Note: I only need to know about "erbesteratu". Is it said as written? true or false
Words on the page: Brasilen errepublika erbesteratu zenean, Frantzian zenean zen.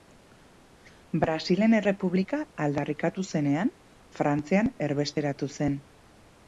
false